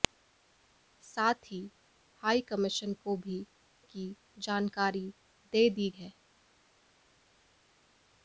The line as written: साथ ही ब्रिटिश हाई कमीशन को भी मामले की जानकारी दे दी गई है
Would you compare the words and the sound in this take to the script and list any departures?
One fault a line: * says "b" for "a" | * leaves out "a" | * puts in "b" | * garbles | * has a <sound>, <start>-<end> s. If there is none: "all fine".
* leaves out "ब्रिटिश"
* leaves out "मामले"
* leaves out "गई"